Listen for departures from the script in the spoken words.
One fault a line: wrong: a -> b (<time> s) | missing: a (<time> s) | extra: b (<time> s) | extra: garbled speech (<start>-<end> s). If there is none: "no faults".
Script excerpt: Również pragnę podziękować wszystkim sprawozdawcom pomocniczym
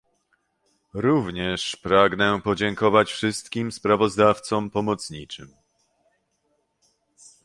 no faults